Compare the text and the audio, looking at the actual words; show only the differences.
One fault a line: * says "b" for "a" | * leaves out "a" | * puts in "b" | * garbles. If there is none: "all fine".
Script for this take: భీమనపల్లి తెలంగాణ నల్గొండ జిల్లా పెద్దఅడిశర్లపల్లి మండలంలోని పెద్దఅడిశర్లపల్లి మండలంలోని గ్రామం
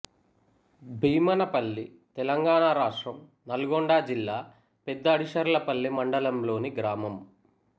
* puts in "రాష్ట్రం"
* leaves out "పెద్దఅడిశర్లపల్లి మండలంలోని"